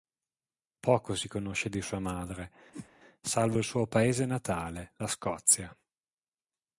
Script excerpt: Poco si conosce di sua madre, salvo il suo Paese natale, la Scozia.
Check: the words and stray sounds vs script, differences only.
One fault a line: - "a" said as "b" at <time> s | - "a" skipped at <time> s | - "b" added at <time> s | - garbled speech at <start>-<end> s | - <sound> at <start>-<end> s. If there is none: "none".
- whoosh at 2.7-2.9 s